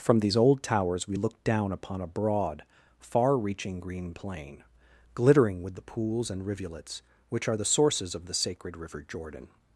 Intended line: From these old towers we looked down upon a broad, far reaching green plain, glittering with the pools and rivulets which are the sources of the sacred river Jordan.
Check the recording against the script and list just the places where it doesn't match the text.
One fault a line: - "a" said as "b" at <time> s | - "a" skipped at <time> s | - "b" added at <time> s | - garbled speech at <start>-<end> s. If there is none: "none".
none